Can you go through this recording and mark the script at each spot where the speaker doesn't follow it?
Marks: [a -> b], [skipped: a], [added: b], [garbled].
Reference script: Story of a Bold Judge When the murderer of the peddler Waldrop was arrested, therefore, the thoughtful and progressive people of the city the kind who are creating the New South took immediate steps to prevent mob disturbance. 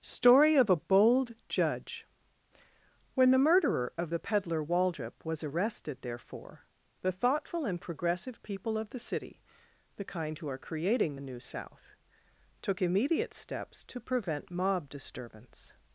Story of a Bold Judge When the murderer of the peddler Waldrop was arrested, therefore, the thoughtful and progressive people of the city the kind who are creating the New South took immediate steps to prevent mob disturbance.